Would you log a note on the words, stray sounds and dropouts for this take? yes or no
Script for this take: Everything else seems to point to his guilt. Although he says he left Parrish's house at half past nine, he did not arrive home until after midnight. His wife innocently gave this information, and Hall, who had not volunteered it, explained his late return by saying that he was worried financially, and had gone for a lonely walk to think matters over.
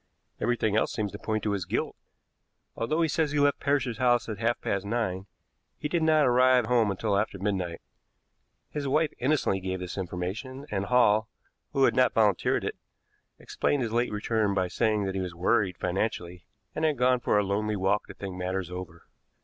no